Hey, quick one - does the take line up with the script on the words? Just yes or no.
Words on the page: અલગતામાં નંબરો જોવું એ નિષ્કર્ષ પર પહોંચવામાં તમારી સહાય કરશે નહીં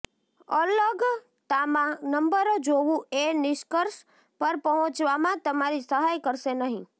yes